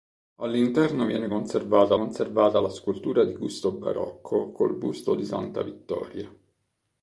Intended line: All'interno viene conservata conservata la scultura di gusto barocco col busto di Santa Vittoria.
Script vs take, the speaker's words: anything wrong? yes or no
no